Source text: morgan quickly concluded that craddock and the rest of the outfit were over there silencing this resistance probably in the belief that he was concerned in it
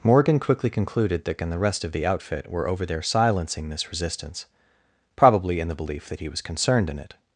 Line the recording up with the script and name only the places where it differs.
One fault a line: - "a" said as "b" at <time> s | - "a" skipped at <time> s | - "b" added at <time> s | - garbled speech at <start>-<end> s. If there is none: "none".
- "craddock" skipped at 1.4 s